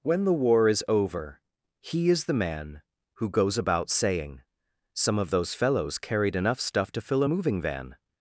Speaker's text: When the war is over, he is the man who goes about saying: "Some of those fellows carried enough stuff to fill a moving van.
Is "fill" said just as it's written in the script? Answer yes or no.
yes